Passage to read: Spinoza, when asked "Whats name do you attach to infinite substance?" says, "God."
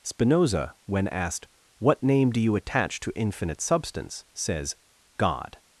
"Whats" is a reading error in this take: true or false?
true